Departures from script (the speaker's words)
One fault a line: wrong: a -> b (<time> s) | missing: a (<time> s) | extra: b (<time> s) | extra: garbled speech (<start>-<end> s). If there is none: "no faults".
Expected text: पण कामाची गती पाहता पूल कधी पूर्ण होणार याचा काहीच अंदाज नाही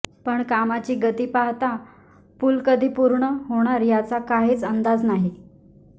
no faults